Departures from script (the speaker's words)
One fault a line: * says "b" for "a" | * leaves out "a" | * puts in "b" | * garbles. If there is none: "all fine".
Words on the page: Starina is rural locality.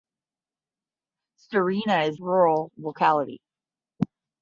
all fine